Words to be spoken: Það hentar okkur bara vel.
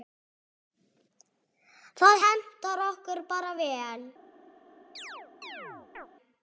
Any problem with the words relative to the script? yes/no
no